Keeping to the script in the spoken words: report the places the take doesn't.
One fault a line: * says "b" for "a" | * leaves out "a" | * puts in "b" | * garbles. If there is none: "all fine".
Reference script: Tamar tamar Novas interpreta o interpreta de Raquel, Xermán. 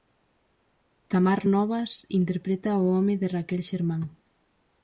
* leaves out "tamar"
* says "home" for "interpreta"